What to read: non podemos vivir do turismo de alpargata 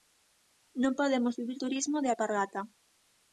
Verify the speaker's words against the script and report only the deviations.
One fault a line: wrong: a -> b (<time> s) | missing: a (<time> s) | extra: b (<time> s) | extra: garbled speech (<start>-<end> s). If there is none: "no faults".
missing: do (1.6 s)